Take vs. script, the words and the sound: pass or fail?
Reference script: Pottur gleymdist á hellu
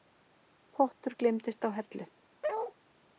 fail